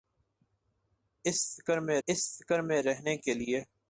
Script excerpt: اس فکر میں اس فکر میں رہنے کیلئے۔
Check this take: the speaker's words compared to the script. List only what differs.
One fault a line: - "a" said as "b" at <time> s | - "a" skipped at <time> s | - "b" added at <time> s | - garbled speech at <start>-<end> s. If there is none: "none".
none